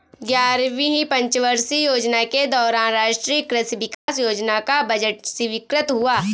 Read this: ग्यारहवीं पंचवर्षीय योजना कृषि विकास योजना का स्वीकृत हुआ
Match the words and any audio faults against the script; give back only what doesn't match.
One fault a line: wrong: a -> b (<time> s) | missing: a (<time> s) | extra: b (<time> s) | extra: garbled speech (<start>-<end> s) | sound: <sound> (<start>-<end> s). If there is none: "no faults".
extra: के दौरान राष्ट्रीय (2.2 s)
sound: dropout (3.9-4.1 s)
extra: बजट (4.8 s)